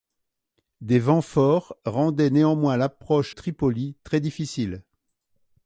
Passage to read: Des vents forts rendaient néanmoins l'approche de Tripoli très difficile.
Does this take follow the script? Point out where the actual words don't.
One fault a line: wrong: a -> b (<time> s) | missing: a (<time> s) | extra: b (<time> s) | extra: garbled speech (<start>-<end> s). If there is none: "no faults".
missing: de (3.4 s)